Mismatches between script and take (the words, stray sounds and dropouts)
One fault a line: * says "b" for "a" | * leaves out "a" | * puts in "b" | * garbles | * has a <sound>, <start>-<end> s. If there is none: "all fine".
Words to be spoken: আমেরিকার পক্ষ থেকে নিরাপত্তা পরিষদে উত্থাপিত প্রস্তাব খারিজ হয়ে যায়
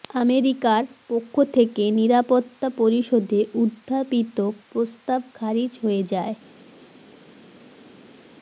all fine